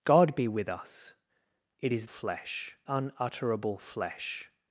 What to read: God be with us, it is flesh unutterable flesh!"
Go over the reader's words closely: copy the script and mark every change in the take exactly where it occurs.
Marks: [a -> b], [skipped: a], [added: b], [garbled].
God be with us, it is flesh unutterable flesh!"